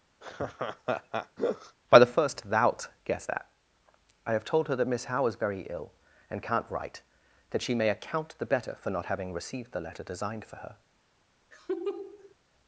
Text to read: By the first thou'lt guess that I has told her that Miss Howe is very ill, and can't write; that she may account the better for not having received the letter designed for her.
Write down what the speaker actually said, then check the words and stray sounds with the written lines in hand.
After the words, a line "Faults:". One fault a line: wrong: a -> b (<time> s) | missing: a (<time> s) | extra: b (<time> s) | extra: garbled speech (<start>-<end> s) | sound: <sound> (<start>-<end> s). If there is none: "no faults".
By the first thou'lt guess that I have told her that Miss Howe is very ill, and can't write; that she may account the better for not having received the letter designed for her.
Faults:
sound: laugh (0.2-1.8 s)
wrong: has -> have (4.3 s)
sound: laugh (11.5-12.3 s)